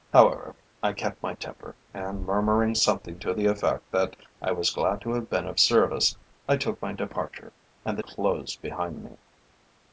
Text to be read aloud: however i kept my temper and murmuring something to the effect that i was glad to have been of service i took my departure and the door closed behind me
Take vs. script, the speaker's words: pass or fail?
fail